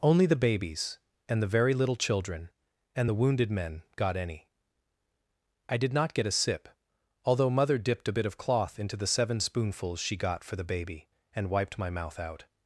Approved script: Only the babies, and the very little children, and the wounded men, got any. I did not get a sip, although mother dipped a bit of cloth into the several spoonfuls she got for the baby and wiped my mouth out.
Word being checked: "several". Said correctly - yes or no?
no